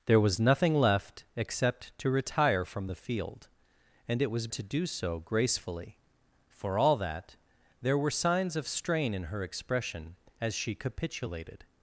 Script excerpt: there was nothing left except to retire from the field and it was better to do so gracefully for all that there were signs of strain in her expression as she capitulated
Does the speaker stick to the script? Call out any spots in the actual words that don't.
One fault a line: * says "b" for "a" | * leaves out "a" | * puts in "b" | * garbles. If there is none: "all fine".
* leaves out "better"